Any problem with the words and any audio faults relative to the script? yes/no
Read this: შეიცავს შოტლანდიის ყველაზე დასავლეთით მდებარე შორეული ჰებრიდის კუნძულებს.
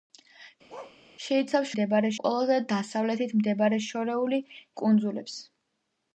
yes